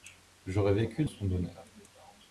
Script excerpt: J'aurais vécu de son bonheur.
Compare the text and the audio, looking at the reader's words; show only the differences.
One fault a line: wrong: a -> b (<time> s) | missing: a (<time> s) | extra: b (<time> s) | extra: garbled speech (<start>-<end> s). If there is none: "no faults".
no faults